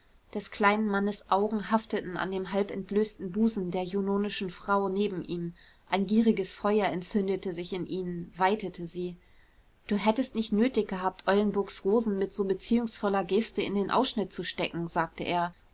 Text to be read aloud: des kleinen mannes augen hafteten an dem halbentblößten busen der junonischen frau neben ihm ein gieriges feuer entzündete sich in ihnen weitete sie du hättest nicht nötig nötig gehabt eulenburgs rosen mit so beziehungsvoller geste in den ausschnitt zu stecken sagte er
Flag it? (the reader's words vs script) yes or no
yes